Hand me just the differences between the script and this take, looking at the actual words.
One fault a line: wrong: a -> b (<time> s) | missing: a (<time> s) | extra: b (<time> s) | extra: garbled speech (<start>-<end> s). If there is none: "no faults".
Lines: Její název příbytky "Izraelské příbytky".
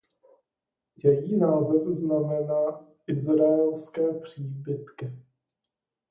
wrong: příbytky -> znamená (1.9 s)